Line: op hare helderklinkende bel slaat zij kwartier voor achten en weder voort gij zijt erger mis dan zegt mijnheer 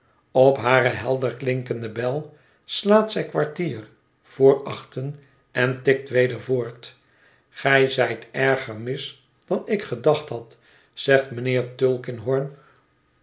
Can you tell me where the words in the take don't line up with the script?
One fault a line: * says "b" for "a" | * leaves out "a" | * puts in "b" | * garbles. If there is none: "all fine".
* puts in "tikt"
* puts in "ik gedacht had"